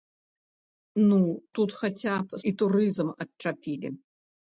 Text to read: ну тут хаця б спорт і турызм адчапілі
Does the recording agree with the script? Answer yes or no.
no